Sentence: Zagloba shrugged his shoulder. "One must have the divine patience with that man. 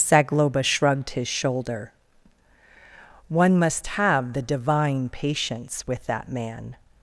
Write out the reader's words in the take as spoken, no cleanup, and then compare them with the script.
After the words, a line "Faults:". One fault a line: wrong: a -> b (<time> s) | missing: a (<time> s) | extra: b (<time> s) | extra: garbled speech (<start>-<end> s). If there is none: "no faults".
Zagloba shrugged his shoulder. "One must have the divine patience with that man.
Faults:
no faults